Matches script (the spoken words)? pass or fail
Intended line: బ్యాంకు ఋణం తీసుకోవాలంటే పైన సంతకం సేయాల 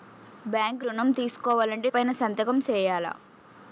pass